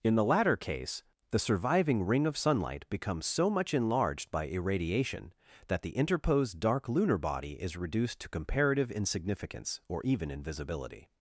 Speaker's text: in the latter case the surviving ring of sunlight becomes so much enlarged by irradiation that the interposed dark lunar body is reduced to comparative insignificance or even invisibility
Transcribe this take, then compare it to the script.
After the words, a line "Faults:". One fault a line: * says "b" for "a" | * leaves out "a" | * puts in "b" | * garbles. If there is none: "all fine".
in the latter case the surviving ring of sunlight becomes so much enlarged by irradiation that the interposed dark lunar body is reduced to comparative insignificance or even invisibility
Faults:
all fine